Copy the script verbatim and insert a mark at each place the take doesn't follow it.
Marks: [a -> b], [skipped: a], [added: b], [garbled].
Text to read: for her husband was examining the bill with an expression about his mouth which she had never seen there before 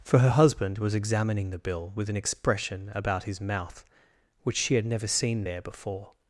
for her husband was examining the bill with an expression about his mouth which she had never seen there before